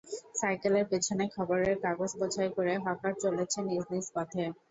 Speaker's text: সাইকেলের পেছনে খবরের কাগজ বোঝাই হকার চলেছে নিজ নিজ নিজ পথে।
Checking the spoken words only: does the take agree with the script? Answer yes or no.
no